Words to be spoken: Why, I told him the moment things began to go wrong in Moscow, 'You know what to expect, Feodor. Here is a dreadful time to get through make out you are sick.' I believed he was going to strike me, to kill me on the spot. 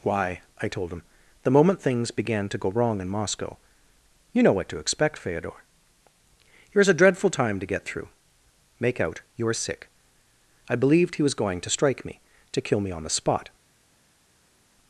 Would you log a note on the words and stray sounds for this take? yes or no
no